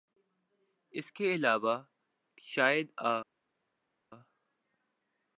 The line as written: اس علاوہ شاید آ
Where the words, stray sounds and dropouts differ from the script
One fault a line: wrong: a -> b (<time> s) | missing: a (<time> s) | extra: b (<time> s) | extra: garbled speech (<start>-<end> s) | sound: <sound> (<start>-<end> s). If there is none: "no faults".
extra: کے (1.1 s)